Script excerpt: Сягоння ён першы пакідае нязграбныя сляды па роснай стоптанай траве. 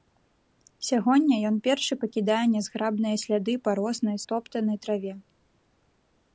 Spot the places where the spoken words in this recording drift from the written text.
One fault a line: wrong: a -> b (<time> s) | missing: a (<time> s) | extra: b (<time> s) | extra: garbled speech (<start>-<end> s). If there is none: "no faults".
no faults